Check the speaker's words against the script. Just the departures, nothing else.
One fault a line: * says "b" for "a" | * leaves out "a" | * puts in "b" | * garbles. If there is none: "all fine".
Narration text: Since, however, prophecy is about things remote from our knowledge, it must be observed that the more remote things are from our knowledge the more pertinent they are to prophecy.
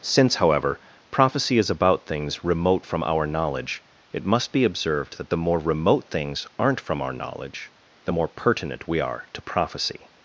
* says "aren't" for "are"
* says "we" for "they"